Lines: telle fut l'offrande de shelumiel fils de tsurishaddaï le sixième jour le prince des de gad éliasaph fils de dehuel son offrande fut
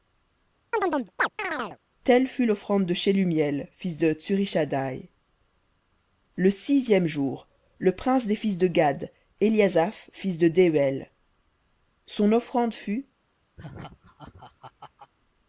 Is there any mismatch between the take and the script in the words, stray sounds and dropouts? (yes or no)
yes